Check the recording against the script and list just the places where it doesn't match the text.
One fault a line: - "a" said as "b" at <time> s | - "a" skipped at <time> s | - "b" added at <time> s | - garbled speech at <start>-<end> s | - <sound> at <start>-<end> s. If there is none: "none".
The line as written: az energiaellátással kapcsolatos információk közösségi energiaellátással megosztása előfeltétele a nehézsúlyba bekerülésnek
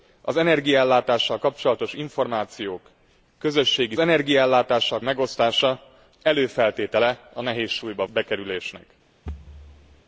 - thud at 9.3-10.0 s